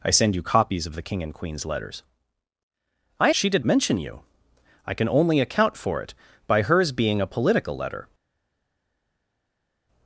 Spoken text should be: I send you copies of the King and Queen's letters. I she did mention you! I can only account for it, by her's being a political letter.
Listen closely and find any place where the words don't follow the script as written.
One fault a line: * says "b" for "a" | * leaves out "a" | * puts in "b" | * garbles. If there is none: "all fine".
all fine